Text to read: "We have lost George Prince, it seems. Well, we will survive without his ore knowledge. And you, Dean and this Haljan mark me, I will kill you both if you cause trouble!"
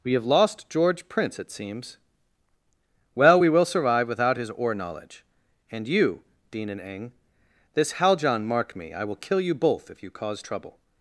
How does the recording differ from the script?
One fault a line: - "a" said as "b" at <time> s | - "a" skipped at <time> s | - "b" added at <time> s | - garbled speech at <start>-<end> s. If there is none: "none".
- "eng" added at 6.8 s